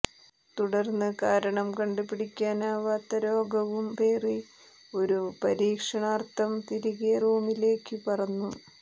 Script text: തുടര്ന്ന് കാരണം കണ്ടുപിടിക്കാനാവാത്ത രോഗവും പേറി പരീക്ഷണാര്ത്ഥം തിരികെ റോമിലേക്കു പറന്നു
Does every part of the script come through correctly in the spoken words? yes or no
no